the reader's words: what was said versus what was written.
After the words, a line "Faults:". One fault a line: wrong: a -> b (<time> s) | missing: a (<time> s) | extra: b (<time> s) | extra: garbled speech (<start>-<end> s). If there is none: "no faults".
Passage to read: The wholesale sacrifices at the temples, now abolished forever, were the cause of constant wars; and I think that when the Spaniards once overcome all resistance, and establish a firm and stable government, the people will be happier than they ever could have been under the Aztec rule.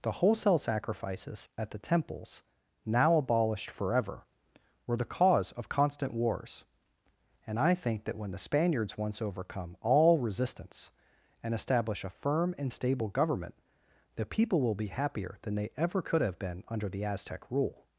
The wholesale sacrifices at the temples, now abolished forever, were the cause of constant wars; and I think that when the Spaniards once overcome all resistance, and establish a firm and stable government, the people will be happier than they ever could have been under the Aztec rule.
Faults:
no faults